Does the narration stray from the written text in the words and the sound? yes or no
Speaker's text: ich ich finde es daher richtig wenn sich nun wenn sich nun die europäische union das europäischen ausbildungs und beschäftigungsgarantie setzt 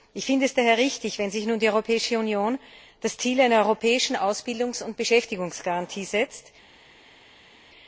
yes